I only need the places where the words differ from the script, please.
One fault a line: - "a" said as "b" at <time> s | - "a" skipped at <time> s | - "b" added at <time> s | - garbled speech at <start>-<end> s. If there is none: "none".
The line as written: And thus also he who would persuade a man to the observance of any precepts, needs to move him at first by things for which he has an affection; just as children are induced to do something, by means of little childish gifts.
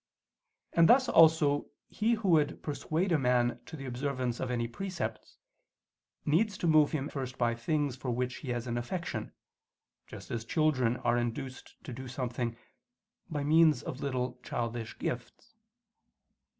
- "at" skipped at 7.1 s